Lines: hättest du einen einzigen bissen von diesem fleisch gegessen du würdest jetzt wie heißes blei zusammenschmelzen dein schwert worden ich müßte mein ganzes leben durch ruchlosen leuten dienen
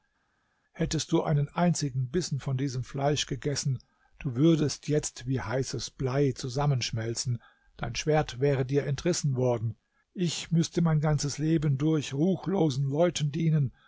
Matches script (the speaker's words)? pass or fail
fail